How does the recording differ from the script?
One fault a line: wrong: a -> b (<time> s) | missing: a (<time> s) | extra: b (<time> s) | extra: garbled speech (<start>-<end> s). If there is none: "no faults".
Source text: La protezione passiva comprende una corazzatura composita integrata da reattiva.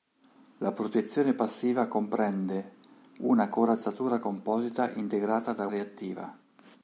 no faults